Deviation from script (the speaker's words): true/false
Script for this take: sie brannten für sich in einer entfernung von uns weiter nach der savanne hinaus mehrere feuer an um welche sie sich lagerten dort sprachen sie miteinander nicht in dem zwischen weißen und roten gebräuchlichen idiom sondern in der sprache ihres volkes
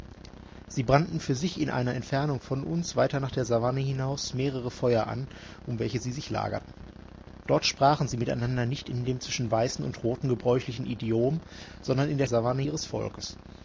true